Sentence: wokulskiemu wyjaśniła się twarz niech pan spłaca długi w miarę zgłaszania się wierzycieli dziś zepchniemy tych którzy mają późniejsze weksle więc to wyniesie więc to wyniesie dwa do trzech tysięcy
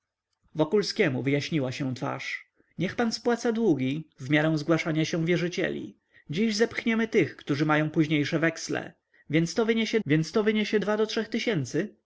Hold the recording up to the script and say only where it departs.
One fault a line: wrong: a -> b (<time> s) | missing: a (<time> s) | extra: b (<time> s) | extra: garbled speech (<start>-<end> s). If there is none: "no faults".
no faults